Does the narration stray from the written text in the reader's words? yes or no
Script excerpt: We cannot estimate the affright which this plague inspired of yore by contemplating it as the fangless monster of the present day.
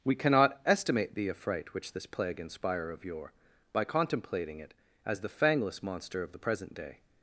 yes